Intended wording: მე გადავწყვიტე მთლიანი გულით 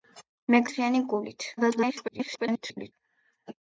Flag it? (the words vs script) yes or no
yes